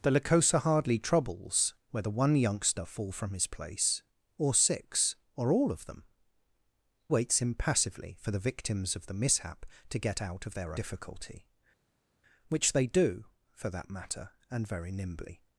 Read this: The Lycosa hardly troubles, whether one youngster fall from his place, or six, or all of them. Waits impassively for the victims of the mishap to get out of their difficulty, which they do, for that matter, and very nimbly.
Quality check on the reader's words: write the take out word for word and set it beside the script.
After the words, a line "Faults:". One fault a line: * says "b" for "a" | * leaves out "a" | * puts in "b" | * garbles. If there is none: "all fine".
The Lycosa hardly troubles, whether one youngster fall from his place, or six, or all of them. Waits impassively for the victims of the mishap to get out of their difficulty, which they do, for that matter, and very nimbly.
Faults:
all fine